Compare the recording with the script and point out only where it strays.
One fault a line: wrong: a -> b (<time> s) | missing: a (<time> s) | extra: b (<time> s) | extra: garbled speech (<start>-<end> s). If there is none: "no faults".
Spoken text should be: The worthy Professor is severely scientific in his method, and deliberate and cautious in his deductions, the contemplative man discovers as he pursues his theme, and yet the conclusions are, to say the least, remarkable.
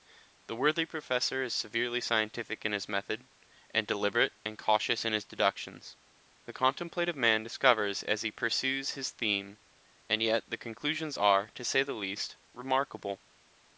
no faults